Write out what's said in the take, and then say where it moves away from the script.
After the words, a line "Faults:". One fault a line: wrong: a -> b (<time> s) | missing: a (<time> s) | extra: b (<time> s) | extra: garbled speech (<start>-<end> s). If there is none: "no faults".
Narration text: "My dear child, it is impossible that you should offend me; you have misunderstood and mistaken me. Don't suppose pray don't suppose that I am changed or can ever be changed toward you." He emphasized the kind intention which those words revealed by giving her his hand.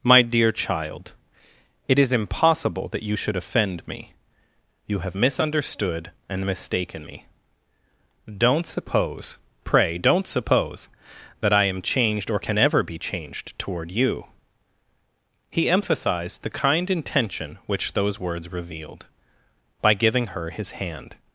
"My dear child, it is impossible that you should offend me; you have misunderstood and mistaken me. Don't suppose pray don't suppose that I am changed or can ever be changed toward you." He emphasized the kind intention which those words revealed by giving her his hand.
Faults:
no faults